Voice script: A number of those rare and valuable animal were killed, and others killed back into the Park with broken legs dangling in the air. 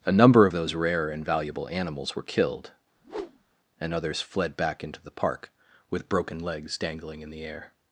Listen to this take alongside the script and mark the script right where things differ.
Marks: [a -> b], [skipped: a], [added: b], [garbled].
A number of those rare and valuable [animal -> animals] were killed, and others [killed -> fled] back into the Park with broken legs dangling in the air.